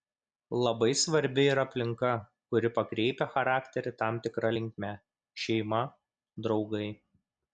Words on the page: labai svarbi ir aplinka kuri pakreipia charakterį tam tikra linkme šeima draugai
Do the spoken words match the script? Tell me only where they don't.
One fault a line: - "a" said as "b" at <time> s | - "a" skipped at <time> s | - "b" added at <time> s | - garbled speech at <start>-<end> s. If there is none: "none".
none